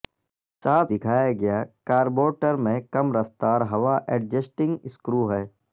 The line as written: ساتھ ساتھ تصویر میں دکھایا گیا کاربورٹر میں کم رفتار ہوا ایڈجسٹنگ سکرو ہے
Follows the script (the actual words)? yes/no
no